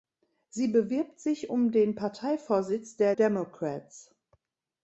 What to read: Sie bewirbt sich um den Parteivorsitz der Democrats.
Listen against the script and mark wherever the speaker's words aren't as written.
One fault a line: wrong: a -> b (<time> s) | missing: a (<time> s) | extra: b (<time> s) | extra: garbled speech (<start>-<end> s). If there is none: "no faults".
no faults